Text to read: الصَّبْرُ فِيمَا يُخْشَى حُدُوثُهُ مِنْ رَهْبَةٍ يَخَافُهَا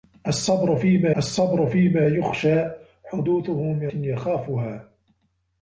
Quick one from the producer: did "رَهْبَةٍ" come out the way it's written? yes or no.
no